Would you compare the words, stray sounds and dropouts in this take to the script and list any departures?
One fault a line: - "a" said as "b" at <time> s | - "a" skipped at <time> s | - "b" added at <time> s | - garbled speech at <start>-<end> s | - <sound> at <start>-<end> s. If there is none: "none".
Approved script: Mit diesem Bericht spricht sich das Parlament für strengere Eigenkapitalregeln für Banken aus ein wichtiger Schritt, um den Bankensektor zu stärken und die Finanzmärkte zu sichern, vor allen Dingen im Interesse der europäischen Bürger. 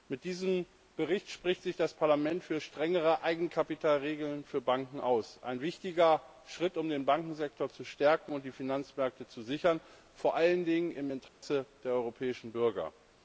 - dropout at 11.3-11.4 s